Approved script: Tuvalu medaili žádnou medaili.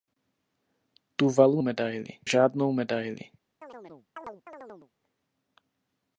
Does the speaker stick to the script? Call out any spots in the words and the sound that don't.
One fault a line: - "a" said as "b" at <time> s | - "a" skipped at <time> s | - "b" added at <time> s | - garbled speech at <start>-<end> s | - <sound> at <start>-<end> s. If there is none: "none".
- chirp at 3.6-4.9 s